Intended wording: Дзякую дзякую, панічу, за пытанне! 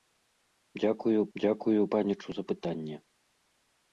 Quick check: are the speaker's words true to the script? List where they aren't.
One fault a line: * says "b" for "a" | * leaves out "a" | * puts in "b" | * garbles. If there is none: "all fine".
all fine